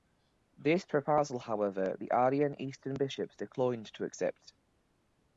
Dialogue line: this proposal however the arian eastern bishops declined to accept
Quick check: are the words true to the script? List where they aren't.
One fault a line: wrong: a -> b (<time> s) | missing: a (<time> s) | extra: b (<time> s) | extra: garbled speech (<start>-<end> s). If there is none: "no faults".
no faults